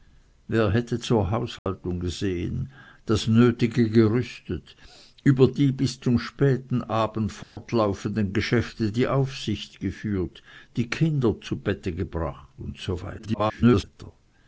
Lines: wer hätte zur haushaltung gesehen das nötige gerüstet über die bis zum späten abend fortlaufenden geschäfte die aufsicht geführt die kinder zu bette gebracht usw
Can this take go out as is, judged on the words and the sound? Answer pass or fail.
fail